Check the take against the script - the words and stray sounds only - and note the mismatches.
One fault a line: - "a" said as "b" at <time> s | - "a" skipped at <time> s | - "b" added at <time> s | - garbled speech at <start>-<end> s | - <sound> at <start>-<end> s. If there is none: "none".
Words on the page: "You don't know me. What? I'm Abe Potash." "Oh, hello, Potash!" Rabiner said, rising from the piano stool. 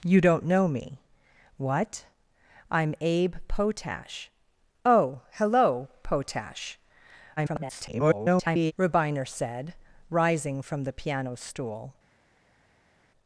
- garbled speech at 7.4-8.7 s